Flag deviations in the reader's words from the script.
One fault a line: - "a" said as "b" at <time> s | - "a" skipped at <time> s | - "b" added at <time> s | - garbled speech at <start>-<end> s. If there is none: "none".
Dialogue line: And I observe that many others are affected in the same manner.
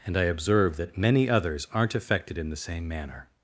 - "are" said as "aren't" at 1.7 s